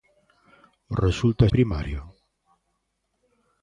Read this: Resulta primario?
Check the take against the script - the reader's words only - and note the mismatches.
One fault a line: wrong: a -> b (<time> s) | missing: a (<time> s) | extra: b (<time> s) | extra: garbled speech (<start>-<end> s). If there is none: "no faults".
no faults